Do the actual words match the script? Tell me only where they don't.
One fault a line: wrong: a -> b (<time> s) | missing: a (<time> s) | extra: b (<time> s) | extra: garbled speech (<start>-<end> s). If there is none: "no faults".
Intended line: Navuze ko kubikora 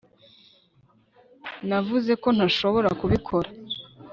extra: ntashobora (2.4 s)